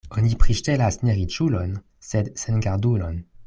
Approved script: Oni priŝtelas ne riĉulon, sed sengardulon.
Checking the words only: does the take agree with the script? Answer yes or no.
yes